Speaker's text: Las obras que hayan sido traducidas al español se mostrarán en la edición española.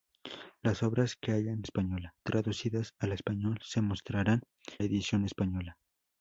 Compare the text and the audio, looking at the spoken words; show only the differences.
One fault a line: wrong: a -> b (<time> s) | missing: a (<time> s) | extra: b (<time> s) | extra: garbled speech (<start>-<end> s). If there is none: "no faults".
wrong: sido -> española (1.6 s)
missing: en (4.4 s)